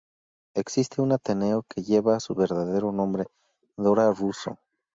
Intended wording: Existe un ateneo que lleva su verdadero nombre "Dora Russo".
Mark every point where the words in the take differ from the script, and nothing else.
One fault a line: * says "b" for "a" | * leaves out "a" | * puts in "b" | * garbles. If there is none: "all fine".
all fine